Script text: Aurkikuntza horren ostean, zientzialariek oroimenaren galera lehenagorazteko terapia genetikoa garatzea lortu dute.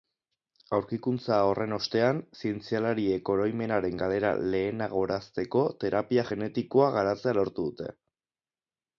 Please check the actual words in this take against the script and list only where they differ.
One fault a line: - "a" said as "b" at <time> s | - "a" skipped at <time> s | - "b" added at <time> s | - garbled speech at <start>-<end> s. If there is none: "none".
none